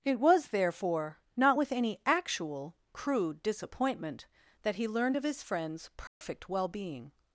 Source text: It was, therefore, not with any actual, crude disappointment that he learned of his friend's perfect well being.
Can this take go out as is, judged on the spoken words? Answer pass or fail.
pass